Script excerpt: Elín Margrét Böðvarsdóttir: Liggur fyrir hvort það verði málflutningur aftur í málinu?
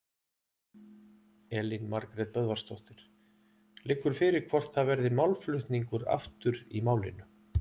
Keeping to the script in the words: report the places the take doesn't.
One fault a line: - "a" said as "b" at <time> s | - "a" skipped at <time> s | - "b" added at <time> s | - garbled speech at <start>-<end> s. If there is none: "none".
none